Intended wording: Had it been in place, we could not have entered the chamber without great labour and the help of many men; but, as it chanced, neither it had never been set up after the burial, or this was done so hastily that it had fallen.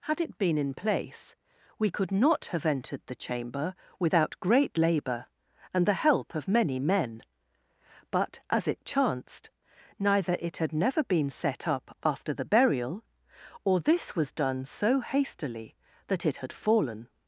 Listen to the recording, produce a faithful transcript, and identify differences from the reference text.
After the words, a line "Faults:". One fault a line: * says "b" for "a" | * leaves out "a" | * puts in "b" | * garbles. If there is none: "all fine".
Had it been in place, we could not have entered the chamber without great labour and the help of many men; but, as it chanced, neither it had never been set up after the burial, or this was done so hastily that it had fallen.
Faults:
all fine